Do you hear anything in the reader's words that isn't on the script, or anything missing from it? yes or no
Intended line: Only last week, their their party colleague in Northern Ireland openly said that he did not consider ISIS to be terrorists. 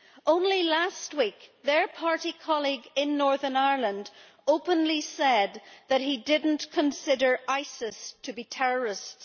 yes